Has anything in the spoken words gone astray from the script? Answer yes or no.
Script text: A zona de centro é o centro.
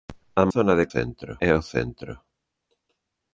no